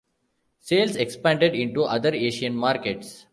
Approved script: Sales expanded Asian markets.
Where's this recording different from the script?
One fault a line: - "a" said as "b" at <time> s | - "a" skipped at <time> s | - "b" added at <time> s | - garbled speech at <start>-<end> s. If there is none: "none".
- "into other" added at 1.5 s